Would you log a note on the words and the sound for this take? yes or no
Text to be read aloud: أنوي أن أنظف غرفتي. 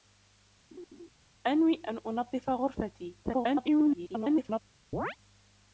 yes